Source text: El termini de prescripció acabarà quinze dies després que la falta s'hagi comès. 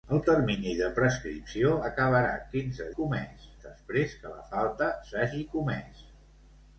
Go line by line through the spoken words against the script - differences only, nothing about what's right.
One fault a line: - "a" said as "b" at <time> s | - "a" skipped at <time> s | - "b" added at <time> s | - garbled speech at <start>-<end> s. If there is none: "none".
- "dies" said as "comès" at 3.0 s